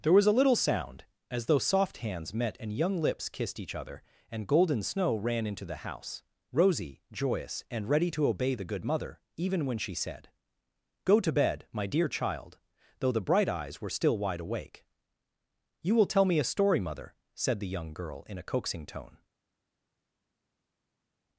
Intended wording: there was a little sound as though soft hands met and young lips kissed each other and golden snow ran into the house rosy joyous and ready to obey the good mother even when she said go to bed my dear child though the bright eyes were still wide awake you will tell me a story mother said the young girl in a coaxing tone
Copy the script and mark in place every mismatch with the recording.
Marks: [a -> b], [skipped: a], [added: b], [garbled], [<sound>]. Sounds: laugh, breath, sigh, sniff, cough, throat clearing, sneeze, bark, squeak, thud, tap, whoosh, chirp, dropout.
there was a little sound as though soft hands met and young lips kissed each other and golden snow ran into the house rosy joyous and ready to obey the good mother even when she said go to bed my dear child though the bright eyes were still wide awake you will tell me a story mother said the young girl in a coaxing tone